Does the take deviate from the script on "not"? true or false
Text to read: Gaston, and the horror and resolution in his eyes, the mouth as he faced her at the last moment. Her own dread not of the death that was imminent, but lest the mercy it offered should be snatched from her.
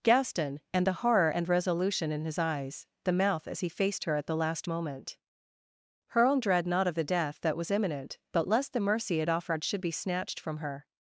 false